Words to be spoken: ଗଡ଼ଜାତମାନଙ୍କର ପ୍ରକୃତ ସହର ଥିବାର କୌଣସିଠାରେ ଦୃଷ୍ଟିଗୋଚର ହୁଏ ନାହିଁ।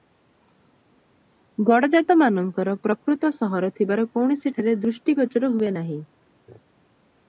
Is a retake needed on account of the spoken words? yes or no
no